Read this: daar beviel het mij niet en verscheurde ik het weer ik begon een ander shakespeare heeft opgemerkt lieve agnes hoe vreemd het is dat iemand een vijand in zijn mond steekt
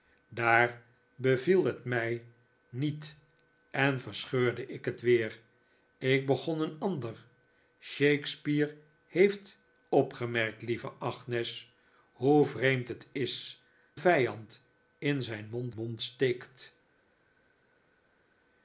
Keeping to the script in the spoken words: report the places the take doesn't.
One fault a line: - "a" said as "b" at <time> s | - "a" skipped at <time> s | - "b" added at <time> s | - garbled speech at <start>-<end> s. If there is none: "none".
- "dat iemand een" skipped at 13.6 s
- "mond" added at 15.7 s